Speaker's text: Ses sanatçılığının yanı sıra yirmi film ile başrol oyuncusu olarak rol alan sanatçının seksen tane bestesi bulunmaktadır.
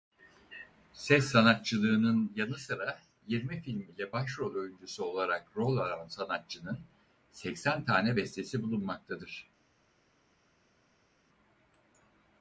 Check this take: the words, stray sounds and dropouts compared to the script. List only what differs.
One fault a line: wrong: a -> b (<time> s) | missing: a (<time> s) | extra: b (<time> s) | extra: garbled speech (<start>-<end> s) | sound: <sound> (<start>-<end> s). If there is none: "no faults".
no faults